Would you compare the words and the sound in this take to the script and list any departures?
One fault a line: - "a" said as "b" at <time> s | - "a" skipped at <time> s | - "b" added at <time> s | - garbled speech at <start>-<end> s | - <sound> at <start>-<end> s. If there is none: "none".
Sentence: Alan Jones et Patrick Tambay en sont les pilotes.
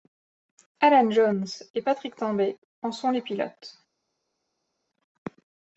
none